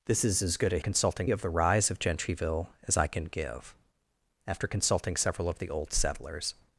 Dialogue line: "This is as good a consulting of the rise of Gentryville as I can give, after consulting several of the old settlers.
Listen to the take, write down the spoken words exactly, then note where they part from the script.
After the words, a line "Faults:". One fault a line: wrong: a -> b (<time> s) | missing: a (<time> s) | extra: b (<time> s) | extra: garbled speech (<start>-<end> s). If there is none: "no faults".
"This is as good a consulting of the rise of Gentryville as I can give, after consulting several of the old settlers.
Faults:
no faults